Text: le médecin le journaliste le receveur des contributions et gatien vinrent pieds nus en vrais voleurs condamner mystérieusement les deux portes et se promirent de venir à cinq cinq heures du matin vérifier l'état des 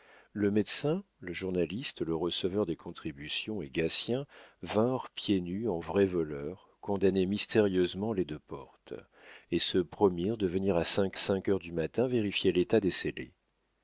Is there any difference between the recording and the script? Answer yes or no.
no